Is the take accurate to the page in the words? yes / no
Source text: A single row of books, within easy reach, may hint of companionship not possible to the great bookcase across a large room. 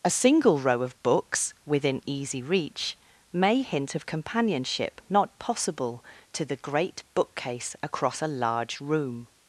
yes